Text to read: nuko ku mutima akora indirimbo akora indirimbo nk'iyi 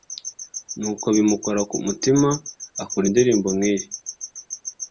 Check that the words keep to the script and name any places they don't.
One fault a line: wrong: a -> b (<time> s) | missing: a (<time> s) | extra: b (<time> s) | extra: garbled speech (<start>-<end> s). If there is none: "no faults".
extra: bimukora (1.1 s)
missing: akora indirimbo (3.5 s)